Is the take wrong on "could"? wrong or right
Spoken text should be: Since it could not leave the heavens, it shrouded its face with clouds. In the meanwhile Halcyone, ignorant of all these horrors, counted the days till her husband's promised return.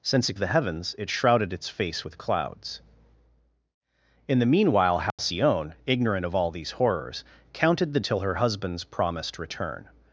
wrong